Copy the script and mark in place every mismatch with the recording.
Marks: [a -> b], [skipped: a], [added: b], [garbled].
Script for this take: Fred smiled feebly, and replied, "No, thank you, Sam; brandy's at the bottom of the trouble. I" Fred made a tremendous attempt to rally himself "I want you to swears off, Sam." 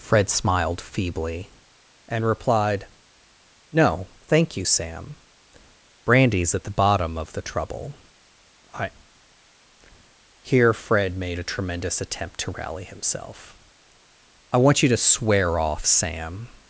Fred smiled feebly, and replied, "No, thank you, Sam; brandy's at the bottom of the trouble. I" [added: here] Fred made a tremendous attempt to rally himself "I want you to [swears -> swear] off, Sam."